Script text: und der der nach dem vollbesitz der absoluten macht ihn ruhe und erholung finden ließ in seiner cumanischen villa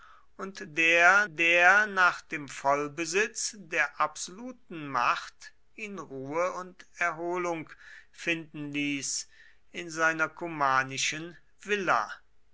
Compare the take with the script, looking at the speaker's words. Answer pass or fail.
pass